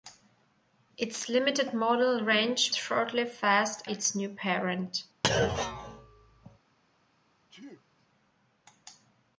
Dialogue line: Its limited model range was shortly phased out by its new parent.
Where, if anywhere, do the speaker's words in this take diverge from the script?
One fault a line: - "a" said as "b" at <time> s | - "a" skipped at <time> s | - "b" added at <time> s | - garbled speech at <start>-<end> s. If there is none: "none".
- "was" skipped at 2.8 s
- "out by" skipped at 3.8 s